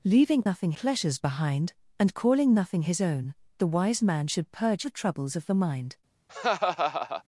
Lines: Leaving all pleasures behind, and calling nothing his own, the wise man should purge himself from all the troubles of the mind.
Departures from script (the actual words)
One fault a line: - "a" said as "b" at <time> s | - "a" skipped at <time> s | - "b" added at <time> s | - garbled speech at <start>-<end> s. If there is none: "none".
- "all" said as "nothing" at 0.4 s
- "himself from all" skipped at 4.8 s